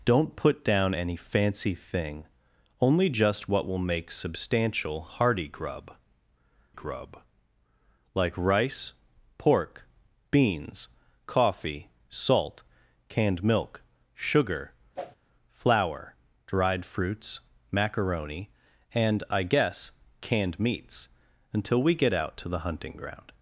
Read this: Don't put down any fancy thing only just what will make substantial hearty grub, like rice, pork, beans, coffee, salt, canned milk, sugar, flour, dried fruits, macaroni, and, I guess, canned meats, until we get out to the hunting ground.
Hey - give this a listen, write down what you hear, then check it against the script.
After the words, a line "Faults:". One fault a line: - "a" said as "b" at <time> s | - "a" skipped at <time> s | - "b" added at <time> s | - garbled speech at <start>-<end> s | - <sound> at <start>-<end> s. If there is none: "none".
Don't put down any fancy thing only just what will make substantial hearty grub grub, like rice, pork, beans, coffee, salt, canned milk, sugar, flour, dried fruits, macaroni, and, I guess, canned meats, until we get out to the hunting ground.
Faults:
- "grub" added at 6.7 s
- whoosh at 15.0-15.2 s